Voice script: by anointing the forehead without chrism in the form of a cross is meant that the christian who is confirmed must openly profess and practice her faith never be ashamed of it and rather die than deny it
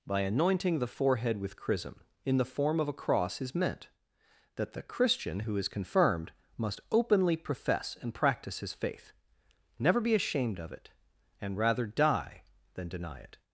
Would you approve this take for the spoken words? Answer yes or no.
no